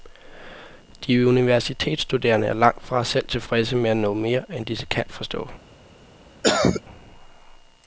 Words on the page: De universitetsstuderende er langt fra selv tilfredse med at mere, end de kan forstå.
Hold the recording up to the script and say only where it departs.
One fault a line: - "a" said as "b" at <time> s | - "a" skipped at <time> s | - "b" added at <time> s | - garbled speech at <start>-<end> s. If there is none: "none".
- "nå" added at 4.0 s